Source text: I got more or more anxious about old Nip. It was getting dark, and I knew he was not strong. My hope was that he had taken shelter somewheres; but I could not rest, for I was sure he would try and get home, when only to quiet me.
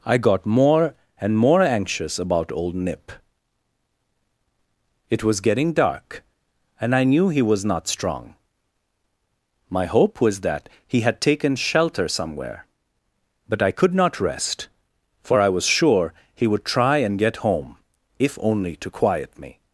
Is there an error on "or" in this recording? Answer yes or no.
yes